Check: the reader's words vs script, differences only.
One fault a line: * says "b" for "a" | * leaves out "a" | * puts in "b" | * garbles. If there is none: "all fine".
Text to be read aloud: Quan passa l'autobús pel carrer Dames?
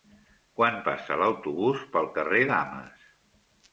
all fine